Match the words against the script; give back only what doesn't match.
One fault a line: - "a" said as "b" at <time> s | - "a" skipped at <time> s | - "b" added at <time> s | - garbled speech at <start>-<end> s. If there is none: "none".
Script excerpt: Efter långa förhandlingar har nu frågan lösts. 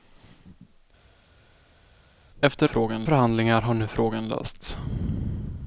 - "långa" said as "frågan" at 2.7 s